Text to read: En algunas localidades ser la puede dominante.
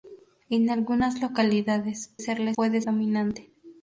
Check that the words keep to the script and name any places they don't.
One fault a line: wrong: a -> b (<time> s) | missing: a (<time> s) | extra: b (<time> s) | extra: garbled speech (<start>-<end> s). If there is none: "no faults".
no faults